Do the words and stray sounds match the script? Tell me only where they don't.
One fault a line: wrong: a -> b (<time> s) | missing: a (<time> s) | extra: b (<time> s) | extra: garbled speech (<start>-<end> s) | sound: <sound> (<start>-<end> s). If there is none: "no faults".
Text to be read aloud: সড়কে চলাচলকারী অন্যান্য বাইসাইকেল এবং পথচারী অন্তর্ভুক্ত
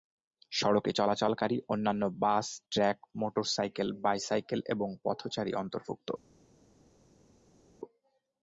extra: বাস ট্রাক মোটরসাইকেল (2.2 s)